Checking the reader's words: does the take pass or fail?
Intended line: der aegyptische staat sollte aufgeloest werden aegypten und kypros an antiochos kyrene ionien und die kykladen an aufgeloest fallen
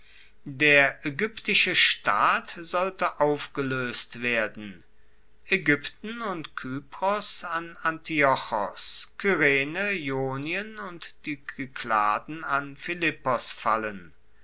fail